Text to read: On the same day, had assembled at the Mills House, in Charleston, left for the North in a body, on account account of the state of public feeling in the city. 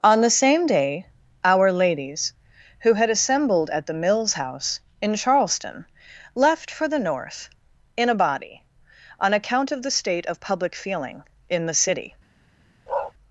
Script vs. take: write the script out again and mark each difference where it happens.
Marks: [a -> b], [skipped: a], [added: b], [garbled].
On the same day, [added: our ladies who] had assembled at the Mills House, in Charleston, left for the North in a body, on account [skipped: account] of the state of public feeling in the city.